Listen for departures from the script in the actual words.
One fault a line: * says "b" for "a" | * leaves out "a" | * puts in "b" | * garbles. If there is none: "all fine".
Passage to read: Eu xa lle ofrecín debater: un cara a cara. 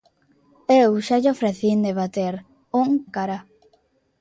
* leaves out "cara"